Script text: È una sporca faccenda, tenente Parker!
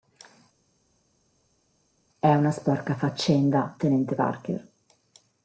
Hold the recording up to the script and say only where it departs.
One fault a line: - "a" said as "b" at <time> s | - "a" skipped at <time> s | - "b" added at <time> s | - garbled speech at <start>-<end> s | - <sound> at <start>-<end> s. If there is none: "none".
none